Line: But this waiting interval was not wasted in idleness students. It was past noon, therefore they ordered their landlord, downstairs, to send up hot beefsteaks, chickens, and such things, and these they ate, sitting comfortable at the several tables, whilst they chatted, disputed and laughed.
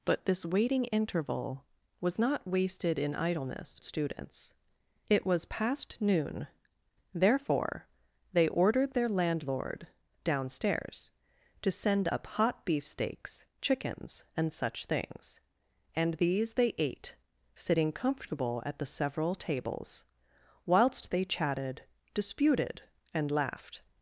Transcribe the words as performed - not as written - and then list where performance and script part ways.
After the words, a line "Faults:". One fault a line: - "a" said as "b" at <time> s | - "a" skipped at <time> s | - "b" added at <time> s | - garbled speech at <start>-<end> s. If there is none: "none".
But this waiting interval was not wasted in idleness students. It was past noon, therefore they ordered their landlord, downstairs, to send up hot beefsteaks, chickens, and such things, and these they ate, sitting comfortable at the several tables, whilst they chatted, disputed and laughed.
Faults:
none